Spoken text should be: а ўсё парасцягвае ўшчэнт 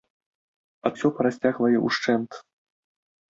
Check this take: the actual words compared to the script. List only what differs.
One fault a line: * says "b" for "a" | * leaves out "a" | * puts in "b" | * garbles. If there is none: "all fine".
all fine